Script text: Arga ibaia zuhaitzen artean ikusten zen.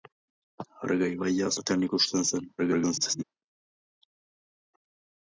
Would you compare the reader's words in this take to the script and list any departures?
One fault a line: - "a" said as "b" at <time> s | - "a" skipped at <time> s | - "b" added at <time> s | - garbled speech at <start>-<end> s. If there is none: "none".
- "zuhaitzen" skipped at 1.5 s
- garbled speech at 2.6-3.2 s